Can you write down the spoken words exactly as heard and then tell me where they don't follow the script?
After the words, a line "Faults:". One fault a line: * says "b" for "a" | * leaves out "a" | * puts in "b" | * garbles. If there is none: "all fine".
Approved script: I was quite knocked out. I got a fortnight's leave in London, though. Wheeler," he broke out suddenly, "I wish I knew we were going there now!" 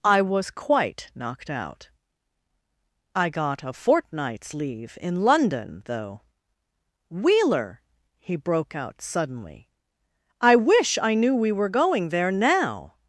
I was quite knocked out. I got a fortnight's leave in London, though. Wheeler," he broke out suddenly, "I wish I knew we were going there now!"
Faults:
all fine